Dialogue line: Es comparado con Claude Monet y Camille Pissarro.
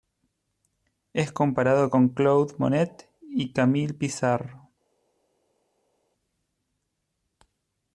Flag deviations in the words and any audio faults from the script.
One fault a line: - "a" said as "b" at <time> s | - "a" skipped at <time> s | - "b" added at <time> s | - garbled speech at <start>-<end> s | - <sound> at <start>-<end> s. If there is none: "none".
none